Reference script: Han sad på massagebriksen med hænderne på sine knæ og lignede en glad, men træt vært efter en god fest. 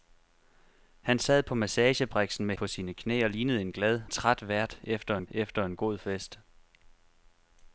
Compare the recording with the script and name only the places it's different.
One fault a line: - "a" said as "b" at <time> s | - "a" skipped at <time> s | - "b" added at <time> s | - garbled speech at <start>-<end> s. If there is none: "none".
- "hænderne" skipped at 2.5 s
- "men" skipped at 4.0 s
- "efter en" added at 5.3 s